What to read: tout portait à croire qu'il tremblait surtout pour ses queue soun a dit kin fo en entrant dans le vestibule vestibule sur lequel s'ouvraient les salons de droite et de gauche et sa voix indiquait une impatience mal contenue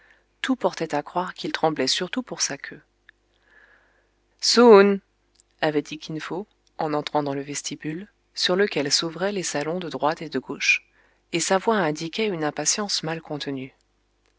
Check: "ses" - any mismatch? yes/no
yes